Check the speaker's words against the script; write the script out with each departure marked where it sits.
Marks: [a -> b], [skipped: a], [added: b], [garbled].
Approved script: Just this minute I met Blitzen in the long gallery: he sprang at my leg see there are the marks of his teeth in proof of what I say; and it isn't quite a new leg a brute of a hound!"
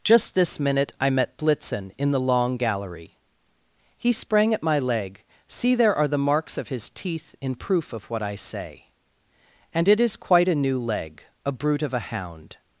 Just this minute I met Blitzen in the long gallery: he sprang at my leg see there are the marks of his teeth in proof of what I say; and it [isn't -> is] quite a new leg a brute of a hound!"